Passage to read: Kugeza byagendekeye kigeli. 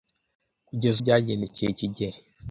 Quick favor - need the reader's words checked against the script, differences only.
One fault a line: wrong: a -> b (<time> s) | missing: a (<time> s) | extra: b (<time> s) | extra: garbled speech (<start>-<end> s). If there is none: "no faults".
no faults